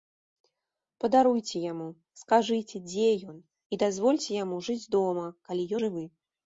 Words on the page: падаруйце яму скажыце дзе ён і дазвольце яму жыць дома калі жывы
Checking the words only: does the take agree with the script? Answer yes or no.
yes